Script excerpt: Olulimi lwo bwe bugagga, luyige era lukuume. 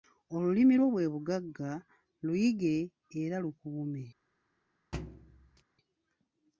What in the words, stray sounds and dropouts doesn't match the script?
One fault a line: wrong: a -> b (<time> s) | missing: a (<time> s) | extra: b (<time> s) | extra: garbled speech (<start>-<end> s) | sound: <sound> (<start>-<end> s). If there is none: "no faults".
sound: thud (4.9-5.6 s)